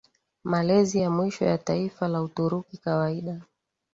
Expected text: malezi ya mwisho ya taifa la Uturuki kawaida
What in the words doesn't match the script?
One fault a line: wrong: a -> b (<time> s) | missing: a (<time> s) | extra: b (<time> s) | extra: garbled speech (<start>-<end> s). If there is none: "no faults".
no faults